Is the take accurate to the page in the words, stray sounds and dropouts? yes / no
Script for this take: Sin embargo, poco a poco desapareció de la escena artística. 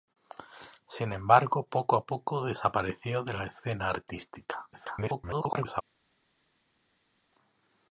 no